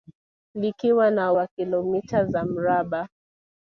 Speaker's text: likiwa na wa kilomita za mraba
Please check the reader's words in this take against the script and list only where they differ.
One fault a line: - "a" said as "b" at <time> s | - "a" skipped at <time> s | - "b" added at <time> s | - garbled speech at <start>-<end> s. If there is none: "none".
none